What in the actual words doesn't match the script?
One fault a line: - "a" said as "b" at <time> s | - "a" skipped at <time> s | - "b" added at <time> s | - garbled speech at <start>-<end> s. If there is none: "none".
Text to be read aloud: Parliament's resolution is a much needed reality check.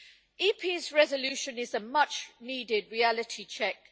none